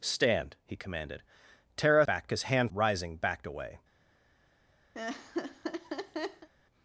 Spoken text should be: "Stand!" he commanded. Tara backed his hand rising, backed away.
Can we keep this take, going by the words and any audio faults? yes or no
no